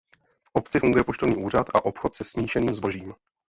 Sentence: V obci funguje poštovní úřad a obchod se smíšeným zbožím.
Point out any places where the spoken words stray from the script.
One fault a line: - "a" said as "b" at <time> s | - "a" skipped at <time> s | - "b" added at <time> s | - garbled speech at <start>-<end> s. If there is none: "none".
none